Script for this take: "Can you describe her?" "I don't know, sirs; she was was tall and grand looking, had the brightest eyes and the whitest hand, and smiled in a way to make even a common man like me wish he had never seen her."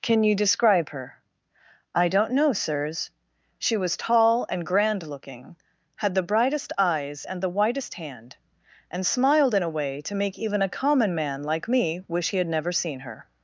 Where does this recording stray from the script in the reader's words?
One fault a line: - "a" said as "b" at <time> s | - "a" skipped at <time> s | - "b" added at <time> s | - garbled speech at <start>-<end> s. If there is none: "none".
- "was" skipped at 4.0 s